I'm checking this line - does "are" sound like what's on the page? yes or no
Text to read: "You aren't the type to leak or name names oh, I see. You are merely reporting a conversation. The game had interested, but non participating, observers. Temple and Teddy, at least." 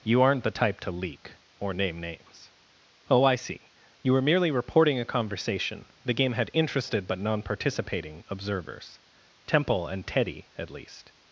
no